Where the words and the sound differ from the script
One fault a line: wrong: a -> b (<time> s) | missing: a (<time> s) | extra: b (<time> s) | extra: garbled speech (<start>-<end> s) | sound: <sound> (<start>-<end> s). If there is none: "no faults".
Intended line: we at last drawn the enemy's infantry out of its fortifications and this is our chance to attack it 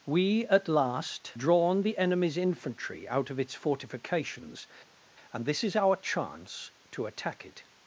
no faults